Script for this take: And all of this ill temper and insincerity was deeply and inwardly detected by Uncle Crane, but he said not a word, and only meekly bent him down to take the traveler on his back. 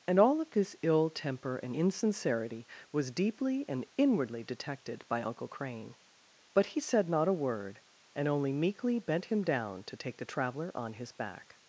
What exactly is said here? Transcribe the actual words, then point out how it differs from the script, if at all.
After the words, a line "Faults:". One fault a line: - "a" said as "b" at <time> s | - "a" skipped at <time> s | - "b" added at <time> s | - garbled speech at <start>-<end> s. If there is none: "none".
And all of this ill temper and insincerity was deeply and inwardly detected by Uncle Crane, but he said not a word, and only meekly bent him down to take the traveler on his back.
Faults:
none